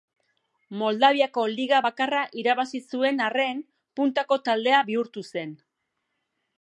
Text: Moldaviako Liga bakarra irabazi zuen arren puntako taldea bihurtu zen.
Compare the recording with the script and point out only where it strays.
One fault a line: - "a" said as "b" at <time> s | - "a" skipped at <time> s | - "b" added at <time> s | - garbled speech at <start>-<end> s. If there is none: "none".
none